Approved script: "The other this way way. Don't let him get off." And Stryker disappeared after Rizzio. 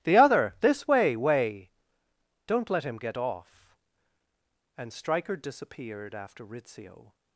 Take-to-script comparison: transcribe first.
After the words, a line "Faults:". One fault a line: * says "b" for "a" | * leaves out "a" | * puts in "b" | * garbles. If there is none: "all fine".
"The other this way way. Don't let him get off." And Stryker disappeared after Rizzio.
Faults:
all fine